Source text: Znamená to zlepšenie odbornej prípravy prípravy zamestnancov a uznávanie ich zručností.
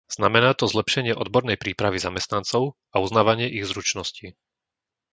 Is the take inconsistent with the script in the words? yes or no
yes